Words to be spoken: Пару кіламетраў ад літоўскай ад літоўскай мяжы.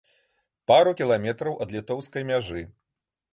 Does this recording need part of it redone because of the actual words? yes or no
yes